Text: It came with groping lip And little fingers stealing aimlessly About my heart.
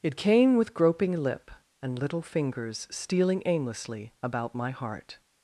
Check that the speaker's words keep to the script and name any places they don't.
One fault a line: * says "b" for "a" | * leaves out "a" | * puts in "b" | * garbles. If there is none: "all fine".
all fine